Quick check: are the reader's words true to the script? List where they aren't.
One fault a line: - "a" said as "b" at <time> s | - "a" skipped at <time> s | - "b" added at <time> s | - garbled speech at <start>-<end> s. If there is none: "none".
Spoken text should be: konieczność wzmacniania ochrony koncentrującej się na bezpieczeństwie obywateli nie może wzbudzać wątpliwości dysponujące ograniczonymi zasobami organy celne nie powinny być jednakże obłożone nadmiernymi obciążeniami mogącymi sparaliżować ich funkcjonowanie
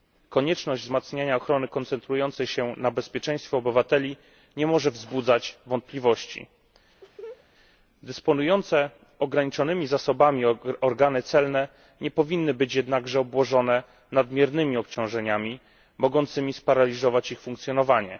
none